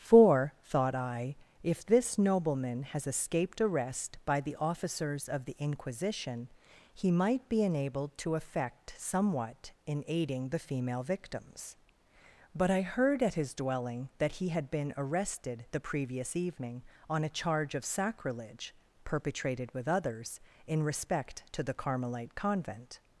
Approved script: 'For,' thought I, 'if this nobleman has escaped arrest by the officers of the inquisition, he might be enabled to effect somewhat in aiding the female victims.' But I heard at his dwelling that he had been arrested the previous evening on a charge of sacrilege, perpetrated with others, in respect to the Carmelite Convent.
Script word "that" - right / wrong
right